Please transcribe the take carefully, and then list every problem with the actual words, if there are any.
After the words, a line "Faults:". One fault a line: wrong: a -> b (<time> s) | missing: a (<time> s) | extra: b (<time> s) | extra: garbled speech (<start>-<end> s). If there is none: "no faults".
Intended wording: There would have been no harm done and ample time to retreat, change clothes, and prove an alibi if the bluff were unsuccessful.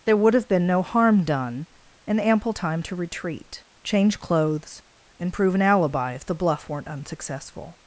There would have been no harm done and ample time to retreat, change clothes, and prove an alibi if the bluff weren't unsuccessful.
Faults:
wrong: were -> weren't (6.7 s)